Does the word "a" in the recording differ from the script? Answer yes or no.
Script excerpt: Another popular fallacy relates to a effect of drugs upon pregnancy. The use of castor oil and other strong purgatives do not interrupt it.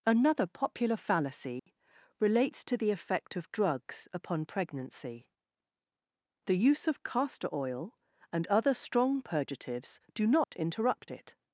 yes